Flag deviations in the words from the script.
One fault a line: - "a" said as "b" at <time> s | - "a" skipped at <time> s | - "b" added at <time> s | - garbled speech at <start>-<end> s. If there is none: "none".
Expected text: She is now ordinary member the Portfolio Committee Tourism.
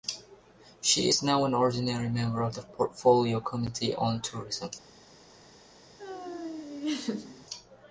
- "an" added at 1.4 s
- "of" added at 2.4 s
- "on" added at 3.9 s